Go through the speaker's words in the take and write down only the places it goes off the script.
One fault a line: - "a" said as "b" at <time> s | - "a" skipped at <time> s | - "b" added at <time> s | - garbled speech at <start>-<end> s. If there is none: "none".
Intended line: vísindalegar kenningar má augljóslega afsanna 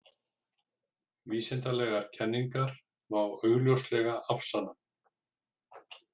none